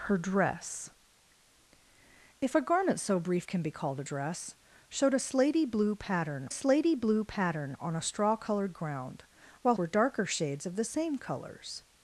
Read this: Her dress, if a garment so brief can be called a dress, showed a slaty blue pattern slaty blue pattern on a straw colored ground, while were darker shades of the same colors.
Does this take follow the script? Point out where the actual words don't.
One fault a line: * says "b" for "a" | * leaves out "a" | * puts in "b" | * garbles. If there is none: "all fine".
all fine